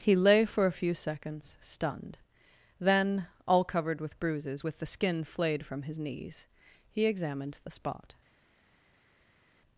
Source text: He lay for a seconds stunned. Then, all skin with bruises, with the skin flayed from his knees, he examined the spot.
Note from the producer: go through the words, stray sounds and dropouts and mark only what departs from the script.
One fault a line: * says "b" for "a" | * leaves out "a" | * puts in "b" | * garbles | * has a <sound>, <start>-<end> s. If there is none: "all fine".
* puts in "few"
* says "covered" for "skin"